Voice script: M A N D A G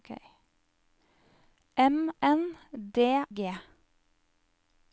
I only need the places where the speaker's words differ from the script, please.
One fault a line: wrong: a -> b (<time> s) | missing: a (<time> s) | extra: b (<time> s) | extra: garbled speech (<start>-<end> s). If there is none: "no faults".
missing: A (2.1 s)
missing: A (3.2 s)